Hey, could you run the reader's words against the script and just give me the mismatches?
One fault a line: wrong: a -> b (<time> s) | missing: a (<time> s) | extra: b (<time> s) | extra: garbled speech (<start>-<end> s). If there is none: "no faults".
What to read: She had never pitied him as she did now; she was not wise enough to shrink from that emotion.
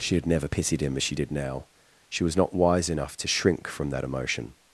no faults